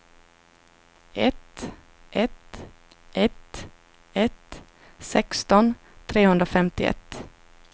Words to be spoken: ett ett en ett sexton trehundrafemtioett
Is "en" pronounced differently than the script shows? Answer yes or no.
yes